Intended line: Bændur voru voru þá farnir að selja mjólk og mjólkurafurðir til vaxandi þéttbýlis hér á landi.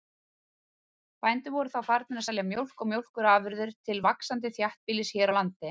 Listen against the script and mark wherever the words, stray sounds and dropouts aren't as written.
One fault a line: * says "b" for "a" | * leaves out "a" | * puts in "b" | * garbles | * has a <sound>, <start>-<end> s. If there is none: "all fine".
* leaves out "voru"